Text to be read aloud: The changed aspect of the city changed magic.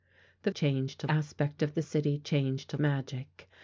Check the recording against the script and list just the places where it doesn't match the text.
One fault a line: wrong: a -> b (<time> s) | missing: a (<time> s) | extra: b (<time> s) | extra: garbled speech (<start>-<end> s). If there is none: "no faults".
no faults